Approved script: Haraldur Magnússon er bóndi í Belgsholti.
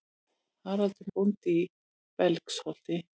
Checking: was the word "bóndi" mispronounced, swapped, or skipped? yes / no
no